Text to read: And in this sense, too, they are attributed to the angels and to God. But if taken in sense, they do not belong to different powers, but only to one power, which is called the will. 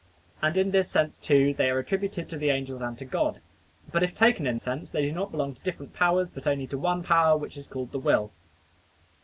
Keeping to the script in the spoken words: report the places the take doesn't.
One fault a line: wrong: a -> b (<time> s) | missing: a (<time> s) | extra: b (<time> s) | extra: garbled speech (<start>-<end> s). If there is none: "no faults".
no faults